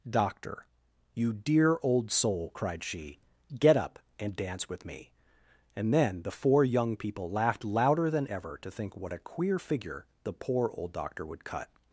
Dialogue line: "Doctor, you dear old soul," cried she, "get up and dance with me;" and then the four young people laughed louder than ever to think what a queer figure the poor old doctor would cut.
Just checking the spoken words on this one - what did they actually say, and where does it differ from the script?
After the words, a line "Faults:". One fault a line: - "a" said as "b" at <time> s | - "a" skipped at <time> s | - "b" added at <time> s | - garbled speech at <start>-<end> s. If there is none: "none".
"Doctor, you dear old soul," cried she, "get up and dance with me;" and then the four young people laughed louder than ever to think what a queer figure the poor old doctor would cut.
Faults:
none